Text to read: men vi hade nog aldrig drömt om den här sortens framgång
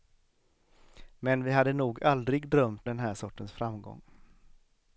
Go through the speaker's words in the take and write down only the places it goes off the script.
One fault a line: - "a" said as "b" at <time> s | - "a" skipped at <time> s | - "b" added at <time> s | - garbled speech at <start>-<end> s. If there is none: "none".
- "om" skipped at 2.9 s